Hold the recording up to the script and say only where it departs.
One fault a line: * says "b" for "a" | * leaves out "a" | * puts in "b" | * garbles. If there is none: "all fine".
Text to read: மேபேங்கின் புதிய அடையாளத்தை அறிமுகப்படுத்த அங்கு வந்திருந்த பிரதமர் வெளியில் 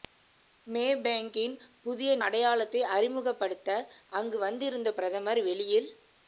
all fine